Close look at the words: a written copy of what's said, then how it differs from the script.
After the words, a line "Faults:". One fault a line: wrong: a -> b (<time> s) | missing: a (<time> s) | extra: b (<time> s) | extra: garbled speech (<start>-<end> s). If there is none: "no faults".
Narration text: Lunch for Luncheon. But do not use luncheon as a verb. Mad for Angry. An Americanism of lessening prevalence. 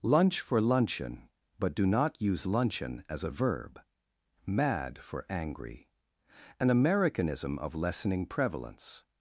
Lunch for Luncheon. But do not use luncheon as a verb. Mad for Angry. An Americanism of lessening prevalence.
Faults:
no faults